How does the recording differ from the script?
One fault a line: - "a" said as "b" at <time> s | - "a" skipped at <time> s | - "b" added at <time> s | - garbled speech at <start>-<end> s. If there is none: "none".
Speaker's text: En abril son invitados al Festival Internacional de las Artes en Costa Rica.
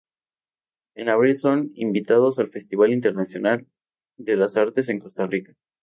none